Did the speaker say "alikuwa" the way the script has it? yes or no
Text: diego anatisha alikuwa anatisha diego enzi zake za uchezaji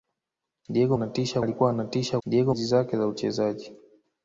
yes